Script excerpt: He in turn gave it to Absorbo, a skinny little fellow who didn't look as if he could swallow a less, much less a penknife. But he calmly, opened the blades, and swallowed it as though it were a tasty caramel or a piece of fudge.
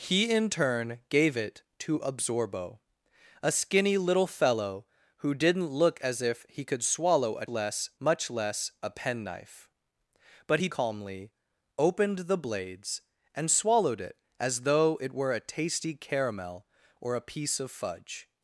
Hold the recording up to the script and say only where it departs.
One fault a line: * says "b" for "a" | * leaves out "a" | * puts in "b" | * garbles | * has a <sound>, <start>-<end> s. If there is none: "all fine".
all fine